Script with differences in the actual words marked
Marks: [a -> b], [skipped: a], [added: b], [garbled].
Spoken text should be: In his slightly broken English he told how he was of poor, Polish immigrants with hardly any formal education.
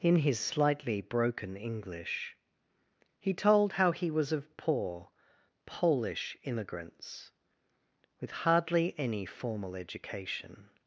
In his slightly broken English he told how he was of poor, Polish immigrants with hardly any formal education.